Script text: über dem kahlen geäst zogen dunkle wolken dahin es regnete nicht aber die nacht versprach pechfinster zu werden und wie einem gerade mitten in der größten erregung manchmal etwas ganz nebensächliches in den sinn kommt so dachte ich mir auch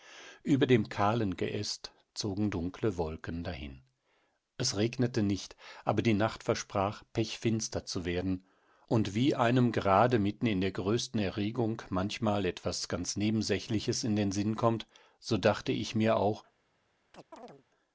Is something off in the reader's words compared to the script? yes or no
no